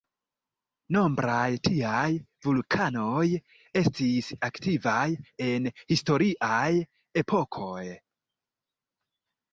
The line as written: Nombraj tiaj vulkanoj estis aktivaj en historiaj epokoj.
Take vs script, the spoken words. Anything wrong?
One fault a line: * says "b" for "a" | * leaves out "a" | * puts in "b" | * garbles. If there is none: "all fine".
all fine